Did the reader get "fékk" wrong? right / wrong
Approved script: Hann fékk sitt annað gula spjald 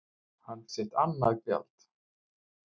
wrong